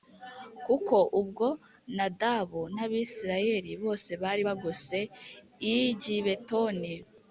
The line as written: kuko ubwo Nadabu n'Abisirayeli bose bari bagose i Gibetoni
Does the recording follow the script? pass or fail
pass